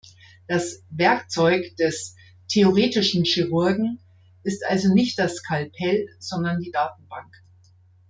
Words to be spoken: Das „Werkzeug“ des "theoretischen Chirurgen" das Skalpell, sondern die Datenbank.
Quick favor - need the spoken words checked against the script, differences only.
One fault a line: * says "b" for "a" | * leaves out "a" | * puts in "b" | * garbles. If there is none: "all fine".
* puts in "ist also nicht"